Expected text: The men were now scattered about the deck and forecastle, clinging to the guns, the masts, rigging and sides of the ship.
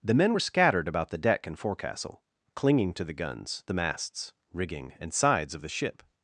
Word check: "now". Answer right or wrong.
wrong